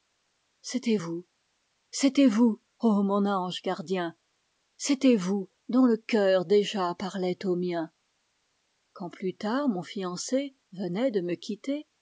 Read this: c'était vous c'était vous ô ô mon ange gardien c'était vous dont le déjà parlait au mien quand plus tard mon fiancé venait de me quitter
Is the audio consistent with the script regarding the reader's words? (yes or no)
no